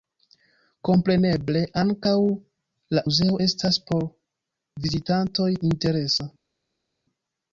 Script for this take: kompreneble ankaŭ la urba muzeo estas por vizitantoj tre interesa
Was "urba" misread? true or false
true